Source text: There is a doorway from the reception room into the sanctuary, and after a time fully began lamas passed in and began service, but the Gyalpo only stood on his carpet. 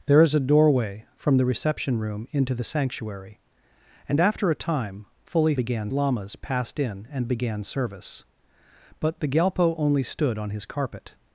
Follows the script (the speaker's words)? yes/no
yes